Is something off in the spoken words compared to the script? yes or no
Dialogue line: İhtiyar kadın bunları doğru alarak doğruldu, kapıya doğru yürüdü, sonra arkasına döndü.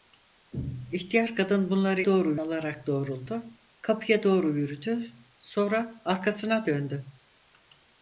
no